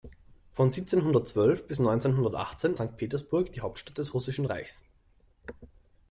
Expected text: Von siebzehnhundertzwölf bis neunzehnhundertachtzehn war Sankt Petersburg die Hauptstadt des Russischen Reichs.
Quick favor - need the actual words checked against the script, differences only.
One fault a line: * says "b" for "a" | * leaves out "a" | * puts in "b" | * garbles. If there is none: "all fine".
* leaves out "war"